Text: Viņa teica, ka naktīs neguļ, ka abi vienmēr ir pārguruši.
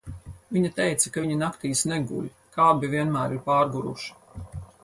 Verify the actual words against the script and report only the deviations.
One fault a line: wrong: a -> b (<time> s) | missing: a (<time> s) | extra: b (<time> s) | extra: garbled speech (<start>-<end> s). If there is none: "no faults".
extra: viņi (1.2 s)